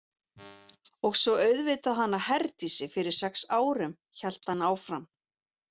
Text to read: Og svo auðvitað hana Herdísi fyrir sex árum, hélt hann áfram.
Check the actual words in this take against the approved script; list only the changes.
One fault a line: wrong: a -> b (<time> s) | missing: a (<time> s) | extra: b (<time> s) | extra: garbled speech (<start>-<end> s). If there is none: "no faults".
no faults